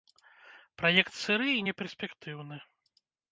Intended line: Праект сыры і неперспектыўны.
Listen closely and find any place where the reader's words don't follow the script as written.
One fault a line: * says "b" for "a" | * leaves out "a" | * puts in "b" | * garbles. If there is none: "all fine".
all fine